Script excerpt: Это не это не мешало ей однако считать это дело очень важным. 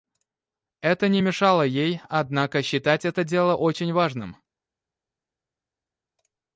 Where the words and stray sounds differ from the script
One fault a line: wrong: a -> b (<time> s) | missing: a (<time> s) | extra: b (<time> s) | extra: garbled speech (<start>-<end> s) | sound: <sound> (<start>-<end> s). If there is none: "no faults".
missing: это не (1.2 s)